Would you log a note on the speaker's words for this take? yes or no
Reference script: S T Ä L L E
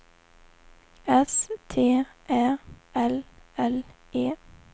no